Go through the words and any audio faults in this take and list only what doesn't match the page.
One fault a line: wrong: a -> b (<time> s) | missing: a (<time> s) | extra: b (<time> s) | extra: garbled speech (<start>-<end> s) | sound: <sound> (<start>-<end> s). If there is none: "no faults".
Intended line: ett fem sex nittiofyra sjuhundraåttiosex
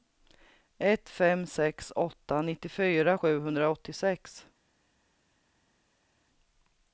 extra: åtta (1.9 s)